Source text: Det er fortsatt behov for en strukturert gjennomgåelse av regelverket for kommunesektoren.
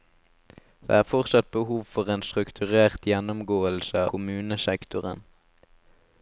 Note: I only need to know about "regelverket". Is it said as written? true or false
false